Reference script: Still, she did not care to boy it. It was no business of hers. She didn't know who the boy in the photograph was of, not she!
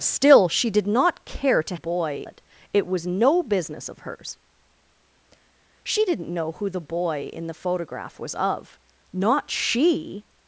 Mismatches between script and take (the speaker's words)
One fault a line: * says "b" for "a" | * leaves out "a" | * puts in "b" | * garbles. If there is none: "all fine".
all fine